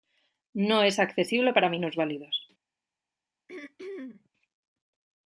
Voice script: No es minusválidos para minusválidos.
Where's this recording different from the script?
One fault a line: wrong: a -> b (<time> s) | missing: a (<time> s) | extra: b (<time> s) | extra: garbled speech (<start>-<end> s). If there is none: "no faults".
wrong: minusválidos -> accesible (1.0 s)